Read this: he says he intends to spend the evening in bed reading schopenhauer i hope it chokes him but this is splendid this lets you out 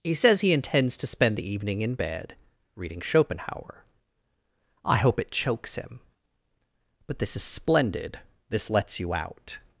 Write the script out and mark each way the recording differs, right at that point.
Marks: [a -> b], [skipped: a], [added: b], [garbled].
he says he intends to spend the evening in bed reading schopenhauer i hope it chokes him but this is splendid this lets you out